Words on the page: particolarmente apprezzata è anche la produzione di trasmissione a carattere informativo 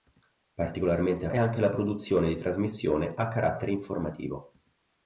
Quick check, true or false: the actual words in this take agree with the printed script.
false